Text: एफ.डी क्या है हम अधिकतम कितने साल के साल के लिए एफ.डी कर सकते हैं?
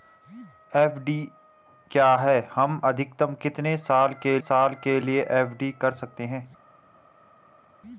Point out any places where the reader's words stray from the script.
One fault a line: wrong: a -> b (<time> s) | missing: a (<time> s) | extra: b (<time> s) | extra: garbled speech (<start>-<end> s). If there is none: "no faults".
no faults